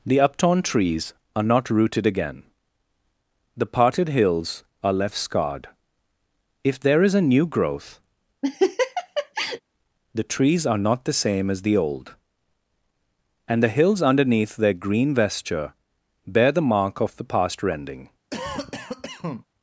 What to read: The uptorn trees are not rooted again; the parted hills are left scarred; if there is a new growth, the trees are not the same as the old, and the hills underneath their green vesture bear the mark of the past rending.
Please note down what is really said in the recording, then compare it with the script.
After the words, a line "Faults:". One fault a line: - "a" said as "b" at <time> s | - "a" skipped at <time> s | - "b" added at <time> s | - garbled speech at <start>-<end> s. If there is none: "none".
The uptorn trees are not rooted again; the parted hills are left scarred; if there is a new growth, the trees are not the same as the old, and the hills underneath their green vesture bear the mark of the past rending.
Faults:
none